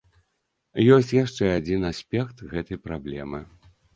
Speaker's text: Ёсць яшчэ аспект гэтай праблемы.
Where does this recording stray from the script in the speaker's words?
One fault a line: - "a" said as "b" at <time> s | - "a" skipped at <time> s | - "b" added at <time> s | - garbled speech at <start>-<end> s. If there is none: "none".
- "адзін" added at 1.6 s